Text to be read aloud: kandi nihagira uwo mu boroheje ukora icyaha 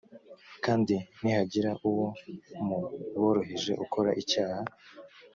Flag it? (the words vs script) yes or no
no